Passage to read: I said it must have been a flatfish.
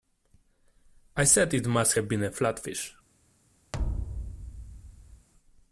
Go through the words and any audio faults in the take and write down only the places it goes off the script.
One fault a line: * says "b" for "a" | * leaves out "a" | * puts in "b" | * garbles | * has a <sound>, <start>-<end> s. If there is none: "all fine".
* has a thud, 3.7-5.3 s